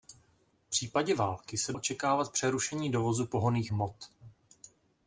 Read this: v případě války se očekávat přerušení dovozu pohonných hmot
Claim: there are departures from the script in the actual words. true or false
false